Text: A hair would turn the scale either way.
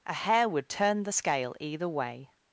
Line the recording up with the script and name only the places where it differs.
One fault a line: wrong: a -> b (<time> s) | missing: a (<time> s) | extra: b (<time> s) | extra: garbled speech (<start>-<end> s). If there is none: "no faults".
no faults